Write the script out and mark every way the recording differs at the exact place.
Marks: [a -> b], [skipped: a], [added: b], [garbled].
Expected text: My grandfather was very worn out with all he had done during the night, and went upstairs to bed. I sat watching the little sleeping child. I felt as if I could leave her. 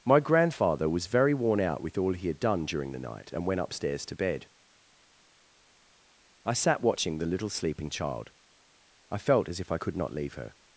My grandfather was very worn out with all he had done during the night, and went upstairs to bed. I sat watching the little sleeping child. I felt as if I could [added: not] leave her.